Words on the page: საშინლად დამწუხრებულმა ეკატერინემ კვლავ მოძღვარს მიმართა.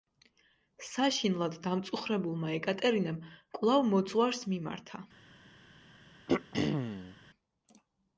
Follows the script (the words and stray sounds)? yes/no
no